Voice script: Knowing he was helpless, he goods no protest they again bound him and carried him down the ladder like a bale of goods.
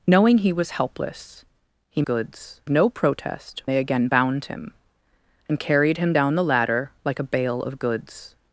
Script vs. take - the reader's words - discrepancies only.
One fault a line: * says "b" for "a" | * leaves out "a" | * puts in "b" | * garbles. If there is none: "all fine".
all fine